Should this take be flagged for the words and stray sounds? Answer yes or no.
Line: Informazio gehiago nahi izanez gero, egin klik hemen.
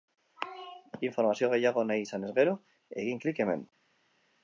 no